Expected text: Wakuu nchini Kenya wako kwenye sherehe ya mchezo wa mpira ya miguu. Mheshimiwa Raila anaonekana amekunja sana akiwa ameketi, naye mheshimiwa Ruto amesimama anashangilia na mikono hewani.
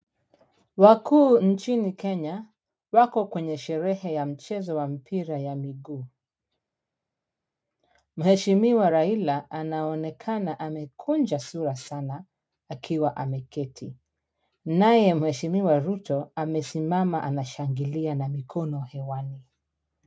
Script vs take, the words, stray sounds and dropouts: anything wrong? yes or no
yes